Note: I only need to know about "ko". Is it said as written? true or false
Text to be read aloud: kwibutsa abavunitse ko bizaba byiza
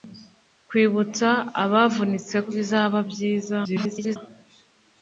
false